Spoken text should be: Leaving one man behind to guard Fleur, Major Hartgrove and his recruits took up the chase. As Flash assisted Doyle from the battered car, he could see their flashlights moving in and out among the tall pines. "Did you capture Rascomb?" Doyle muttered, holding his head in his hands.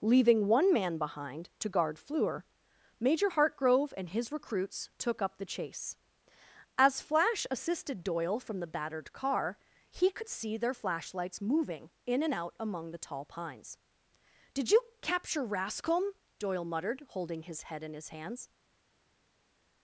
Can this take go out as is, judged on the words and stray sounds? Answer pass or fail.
pass